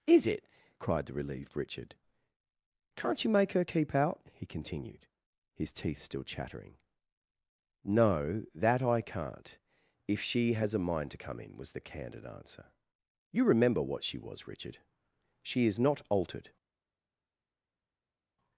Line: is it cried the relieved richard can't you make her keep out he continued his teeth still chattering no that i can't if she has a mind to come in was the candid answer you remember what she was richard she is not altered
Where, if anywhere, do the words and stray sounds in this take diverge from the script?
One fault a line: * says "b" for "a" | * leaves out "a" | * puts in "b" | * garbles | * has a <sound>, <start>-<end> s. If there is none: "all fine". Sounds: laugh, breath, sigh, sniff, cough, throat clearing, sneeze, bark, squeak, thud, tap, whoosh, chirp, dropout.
all fine